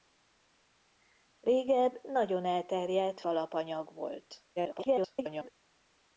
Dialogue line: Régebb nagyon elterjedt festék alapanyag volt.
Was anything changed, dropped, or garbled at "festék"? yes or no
yes